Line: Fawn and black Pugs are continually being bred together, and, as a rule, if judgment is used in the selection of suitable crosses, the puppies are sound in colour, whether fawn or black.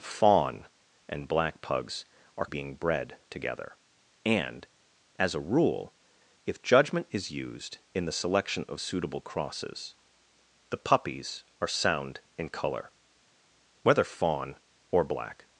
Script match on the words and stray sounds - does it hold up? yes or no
no